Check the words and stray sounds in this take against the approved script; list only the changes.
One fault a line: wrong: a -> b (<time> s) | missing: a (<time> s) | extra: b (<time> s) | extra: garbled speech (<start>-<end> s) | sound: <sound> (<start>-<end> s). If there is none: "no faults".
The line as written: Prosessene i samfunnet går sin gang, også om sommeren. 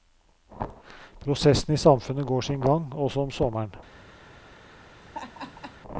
sound: laugh (5.0-5.8 s)